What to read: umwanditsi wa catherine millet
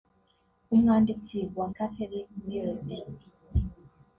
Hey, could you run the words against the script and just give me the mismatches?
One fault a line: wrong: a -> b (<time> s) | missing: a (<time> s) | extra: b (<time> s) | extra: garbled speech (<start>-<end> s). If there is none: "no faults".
no faults